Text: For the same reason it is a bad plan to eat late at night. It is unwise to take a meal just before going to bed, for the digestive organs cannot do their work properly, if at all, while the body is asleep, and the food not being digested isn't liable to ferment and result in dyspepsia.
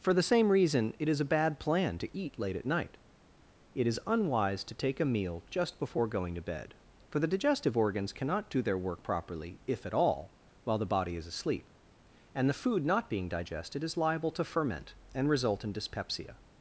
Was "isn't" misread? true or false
true